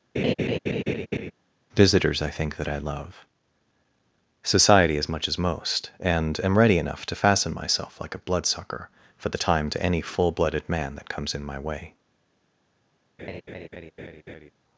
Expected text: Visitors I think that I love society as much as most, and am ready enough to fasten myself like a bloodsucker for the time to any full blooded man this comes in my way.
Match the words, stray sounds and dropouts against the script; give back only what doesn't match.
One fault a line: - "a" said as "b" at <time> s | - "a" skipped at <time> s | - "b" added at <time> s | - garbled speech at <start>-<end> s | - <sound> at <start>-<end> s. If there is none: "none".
- laugh at 0.2-1.3 s
- "this" said as "that" at 11.0 s
- laugh at 13.2-14.5 s